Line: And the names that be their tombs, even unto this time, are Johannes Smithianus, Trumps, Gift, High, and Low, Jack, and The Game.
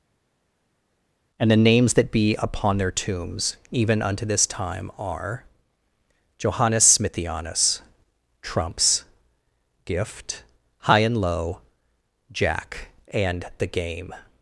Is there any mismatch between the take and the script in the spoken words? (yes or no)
yes